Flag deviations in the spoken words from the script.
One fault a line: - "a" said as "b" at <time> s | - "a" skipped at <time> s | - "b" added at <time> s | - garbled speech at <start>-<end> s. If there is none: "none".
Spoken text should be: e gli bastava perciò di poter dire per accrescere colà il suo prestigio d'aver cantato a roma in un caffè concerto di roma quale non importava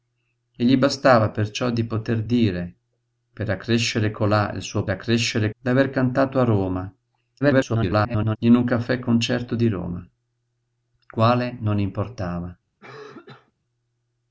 - "prestigio" said as "accrescere" at 4.9 s
- garbled speech at 7.4-8.4 s